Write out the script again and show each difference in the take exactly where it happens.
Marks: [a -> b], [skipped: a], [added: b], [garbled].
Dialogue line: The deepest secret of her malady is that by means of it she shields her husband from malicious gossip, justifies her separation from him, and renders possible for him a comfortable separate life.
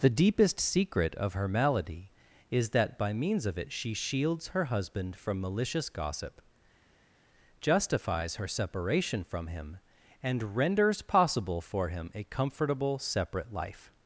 The deepest secret of her malady is that by means of it she shields her husband from malicious gossip, justifies her separation from him, and renders possible for him a comfortable separate life.